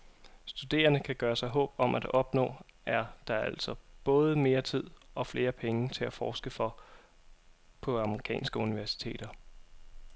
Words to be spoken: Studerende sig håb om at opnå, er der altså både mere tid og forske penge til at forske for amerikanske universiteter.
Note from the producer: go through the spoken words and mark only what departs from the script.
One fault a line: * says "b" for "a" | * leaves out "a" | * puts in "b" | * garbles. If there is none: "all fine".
* puts in "kan gøre"
* says "flere" for "forske"
* puts in "på"